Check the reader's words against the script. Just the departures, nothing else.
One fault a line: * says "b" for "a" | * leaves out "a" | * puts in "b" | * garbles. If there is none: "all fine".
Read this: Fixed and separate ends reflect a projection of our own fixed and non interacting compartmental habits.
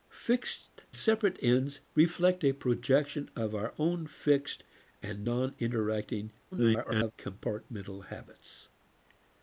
* leaves out "and"
* garbles